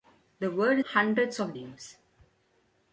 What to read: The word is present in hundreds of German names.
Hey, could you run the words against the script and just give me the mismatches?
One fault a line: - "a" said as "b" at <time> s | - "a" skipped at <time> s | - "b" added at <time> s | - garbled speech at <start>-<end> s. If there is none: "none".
- "is present in" skipped at 0.8 s
- "German" skipped at 1.6 s